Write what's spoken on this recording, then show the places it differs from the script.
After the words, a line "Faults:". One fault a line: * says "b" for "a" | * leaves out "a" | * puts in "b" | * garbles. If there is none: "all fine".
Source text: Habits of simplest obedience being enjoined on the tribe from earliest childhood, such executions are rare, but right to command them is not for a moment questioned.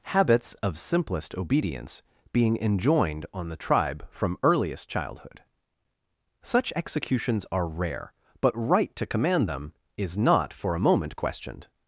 Habits of simplest obedience being enjoined on the tribe from earliest childhood, such executions are rare, but right to command them is not for a moment questioned.
Faults:
all fine